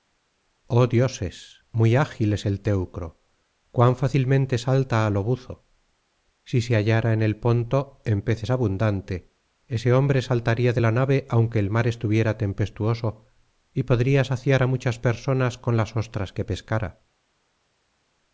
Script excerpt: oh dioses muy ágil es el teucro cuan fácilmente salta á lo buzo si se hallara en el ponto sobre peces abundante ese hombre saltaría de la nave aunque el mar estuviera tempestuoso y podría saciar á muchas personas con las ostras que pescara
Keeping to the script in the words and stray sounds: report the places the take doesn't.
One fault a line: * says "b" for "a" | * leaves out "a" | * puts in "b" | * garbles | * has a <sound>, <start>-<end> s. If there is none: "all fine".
* says "en" for "sobre"